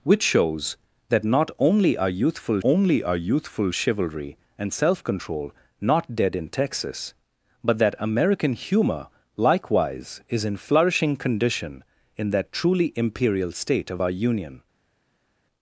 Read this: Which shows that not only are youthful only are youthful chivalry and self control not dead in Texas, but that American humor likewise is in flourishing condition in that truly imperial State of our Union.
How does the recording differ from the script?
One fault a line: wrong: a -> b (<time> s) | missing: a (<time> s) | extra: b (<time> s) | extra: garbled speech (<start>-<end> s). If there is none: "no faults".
no faults